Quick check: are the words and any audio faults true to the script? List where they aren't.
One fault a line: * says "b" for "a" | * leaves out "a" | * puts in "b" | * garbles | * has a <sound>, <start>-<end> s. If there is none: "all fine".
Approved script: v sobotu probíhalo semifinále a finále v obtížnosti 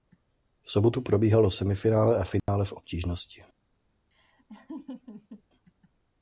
* has a dropout, 2.4-2.5 s
* has a laugh, 4.1-5.4 s